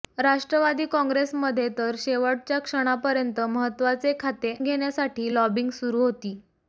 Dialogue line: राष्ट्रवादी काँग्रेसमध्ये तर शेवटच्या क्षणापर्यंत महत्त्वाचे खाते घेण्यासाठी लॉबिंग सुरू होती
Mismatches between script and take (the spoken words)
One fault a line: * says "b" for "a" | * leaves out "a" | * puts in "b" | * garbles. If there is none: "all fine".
all fine